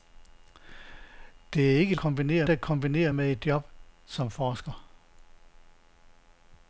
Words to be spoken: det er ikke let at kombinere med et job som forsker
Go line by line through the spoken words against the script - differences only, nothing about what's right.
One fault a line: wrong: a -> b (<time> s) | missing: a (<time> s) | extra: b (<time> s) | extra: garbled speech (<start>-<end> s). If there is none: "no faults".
wrong: let -> kombinere (2.0 s)